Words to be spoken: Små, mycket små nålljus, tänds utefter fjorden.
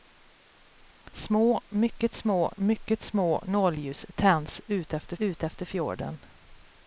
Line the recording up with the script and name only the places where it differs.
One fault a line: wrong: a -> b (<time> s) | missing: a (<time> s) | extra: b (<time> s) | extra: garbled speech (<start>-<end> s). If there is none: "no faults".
extra: mycket små (2.5 s)
extra: utefter (5.2 s)